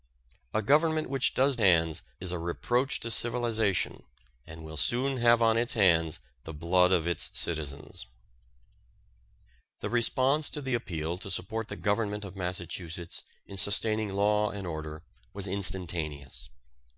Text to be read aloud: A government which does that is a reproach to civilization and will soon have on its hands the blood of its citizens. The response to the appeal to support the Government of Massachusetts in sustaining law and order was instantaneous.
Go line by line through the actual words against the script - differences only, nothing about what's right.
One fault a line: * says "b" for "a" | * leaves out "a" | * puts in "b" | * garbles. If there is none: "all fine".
* says "hands" for "that"